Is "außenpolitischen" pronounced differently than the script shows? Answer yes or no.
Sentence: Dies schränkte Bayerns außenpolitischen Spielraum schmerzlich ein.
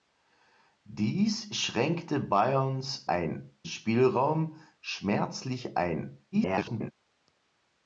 yes